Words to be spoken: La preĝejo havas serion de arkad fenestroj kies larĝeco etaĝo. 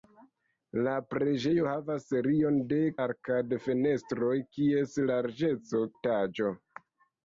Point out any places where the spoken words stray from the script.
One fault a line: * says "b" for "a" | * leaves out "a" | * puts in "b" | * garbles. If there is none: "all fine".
all fine